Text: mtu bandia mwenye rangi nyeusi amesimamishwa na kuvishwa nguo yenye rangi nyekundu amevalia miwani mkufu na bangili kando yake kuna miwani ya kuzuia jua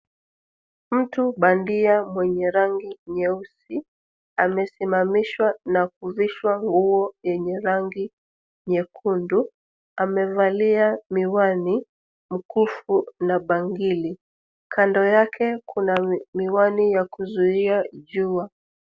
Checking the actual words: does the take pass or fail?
pass